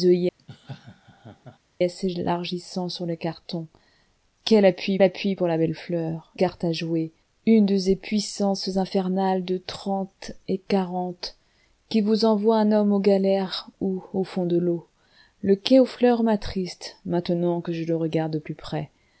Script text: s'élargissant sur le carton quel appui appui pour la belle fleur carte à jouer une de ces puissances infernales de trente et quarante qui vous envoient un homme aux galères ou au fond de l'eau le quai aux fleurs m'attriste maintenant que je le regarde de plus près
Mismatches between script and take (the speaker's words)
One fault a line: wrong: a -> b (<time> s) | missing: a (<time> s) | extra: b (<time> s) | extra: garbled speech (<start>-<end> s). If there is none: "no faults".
no faults